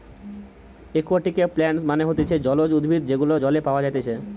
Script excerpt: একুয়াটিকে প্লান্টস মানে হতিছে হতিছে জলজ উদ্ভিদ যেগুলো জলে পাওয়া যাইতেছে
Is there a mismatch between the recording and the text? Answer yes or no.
yes